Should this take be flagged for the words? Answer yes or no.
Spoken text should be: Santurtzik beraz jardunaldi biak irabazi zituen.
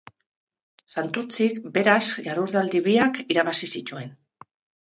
no